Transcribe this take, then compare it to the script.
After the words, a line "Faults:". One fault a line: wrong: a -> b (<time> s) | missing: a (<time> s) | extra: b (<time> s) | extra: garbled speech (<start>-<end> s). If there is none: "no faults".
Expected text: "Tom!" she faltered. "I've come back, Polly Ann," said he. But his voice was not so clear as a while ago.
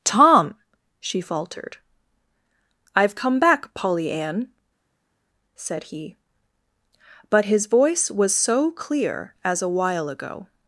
"Tom!" she faltered. "I've come back, Polly Ann," said he. But his voice was so clear as a while ago.
Faults:
missing: not (8.3 s)